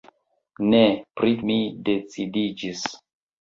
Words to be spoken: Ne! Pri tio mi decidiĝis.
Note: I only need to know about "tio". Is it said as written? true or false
false